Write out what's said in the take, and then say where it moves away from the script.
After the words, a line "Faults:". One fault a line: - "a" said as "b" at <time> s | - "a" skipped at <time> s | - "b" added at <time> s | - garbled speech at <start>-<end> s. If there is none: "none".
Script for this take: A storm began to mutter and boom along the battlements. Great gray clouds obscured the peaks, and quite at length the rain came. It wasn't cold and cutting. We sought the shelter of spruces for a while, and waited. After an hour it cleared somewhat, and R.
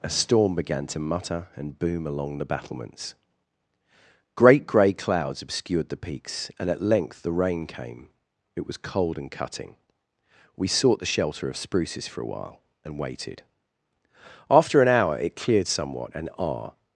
A storm began to mutter and boom along the battlements. Great gray clouds obscured the peaks, and at length the rain came. It was cold and cutting. We sought the shelter of spruces for a while, and waited. After an hour it cleared somewhat, and R.
Faults:
- "quite" skipped at 6.7 s
- "wasn't" said as "was" at 8.7 s